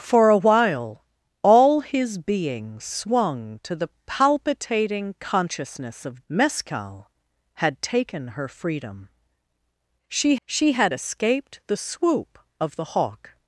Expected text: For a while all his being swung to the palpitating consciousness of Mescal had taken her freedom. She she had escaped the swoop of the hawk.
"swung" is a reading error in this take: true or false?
false